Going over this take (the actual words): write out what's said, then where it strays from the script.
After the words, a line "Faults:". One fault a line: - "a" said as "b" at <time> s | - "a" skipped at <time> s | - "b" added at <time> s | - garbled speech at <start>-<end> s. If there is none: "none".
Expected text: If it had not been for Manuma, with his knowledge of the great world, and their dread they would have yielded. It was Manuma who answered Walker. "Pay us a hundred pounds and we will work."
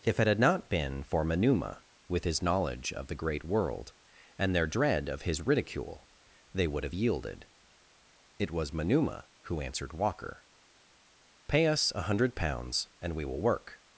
If it had not been for Manuma, with his knowledge of the great world, and their dread of his ridicule, they would have yielded. It was Manuma who answered Walker. "Pay us a hundred pounds and we will work."
Faults:
- "of his ridicule" added at 5.1 s